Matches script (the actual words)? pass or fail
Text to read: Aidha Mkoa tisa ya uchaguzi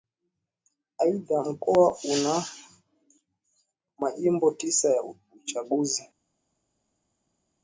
fail